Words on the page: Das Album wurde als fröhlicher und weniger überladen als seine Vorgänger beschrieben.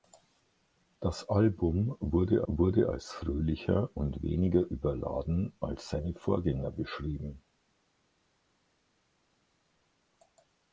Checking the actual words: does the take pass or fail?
fail